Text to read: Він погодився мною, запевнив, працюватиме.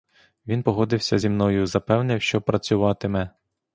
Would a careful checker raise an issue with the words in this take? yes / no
yes